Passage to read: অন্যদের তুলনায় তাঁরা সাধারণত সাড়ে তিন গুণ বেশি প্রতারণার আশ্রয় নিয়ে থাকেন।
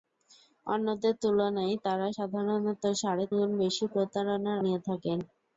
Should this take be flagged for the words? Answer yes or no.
yes